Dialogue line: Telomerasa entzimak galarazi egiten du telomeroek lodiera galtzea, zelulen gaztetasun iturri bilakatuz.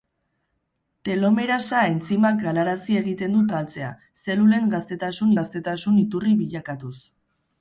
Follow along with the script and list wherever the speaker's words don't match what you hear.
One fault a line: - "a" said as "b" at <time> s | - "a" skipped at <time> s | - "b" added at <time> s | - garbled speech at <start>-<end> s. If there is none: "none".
- "telomeroek lodiera" skipped at 3.4 s
- "gaztetasun" added at 5.4 s